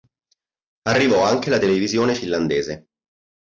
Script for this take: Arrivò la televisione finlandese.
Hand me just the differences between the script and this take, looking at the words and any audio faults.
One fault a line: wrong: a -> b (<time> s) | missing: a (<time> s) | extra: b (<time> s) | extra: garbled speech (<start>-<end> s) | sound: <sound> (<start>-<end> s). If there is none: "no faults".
extra: anche (1.2 s)